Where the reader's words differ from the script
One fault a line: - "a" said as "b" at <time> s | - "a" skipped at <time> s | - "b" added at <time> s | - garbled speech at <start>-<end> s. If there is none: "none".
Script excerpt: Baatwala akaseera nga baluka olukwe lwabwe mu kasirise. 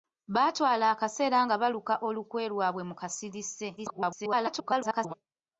- garbled speech at 3.8-5.1 s